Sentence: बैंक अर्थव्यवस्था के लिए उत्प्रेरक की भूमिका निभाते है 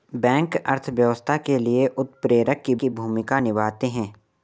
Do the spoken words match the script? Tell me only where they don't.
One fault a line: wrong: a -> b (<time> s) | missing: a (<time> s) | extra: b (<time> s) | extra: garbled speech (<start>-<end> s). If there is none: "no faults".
extra: की (2.8 s)